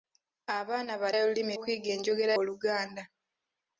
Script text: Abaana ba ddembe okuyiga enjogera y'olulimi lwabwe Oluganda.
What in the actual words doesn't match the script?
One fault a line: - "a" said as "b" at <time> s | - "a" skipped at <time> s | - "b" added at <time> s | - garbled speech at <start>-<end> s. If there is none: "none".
- "ddembe" said as "y'olulimi" at 1.2 s
- "y'olulimi lwabwe" skipped at 2.3 s